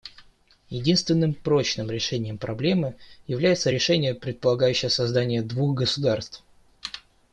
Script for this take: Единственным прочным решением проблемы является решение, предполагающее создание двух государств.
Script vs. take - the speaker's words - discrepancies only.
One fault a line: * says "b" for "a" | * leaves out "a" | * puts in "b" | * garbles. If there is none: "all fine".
all fine